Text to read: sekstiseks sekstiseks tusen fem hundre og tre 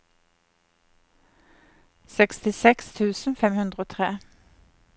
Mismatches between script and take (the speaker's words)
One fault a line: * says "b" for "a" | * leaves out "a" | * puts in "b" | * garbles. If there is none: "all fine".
* leaves out "sekstiseks"